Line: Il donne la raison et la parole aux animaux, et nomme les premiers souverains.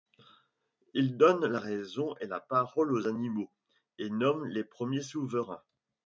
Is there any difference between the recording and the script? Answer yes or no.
no